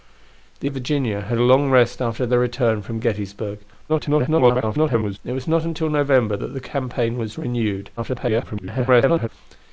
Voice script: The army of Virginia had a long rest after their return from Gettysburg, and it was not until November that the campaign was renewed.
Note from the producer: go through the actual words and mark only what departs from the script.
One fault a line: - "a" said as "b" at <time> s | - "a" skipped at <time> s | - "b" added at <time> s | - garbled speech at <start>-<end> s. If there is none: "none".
- "army" skipped at 0.7 s
- garbled speech at 3.9-5.2 s
- garbled speech at 8.0-9.3 s